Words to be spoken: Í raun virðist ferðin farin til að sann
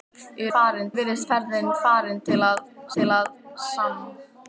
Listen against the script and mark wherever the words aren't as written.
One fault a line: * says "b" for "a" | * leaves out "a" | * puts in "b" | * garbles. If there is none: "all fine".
* says "farin" for "raun"
* puts in "til að"